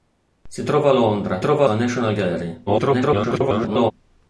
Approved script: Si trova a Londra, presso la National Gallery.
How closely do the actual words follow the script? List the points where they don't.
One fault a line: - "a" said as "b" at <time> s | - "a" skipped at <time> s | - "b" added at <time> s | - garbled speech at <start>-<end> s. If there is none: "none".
- "presso" said as "trova" at 1.4 s
- garbled speech at 2.7-3.9 s